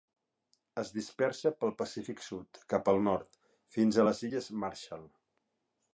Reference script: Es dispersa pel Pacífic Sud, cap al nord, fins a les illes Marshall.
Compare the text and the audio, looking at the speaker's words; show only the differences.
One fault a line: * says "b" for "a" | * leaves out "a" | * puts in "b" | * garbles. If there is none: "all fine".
all fine